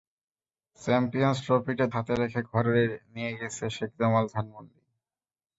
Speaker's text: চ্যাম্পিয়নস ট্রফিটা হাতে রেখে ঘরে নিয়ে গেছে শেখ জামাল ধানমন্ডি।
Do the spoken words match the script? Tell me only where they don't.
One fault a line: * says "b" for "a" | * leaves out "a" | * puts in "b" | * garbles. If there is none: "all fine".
all fine